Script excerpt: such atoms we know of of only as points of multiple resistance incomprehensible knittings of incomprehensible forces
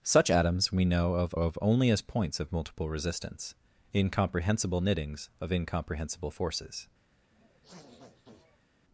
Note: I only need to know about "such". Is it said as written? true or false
true